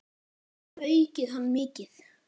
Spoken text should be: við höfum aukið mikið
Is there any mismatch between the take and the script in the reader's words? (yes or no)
yes